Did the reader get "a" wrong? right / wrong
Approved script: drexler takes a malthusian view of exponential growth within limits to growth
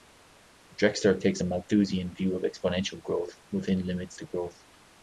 right